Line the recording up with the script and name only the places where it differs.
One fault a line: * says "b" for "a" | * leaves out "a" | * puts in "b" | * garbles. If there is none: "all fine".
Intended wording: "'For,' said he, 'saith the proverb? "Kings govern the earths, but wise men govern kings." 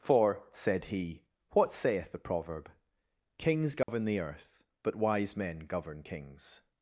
* puts in "what"
* says "earth" for "earths"